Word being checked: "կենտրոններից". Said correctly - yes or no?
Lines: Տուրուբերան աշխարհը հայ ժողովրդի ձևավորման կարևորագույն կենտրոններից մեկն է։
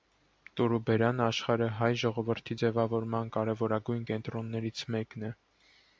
yes